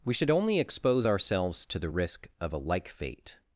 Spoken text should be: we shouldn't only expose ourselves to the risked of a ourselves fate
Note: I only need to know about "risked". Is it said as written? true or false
false